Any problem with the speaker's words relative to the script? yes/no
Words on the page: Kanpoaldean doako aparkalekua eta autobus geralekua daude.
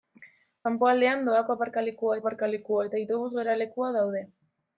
yes